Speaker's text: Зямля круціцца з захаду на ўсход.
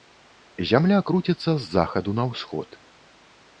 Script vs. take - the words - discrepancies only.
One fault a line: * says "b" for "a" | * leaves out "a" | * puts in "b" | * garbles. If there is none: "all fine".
all fine